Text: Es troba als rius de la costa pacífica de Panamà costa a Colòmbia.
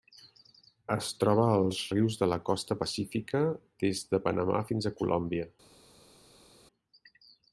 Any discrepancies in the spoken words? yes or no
yes